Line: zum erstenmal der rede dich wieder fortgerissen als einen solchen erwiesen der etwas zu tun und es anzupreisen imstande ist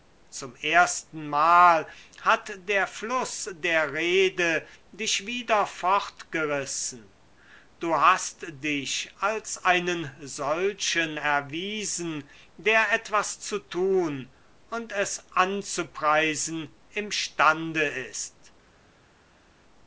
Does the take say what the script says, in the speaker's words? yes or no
no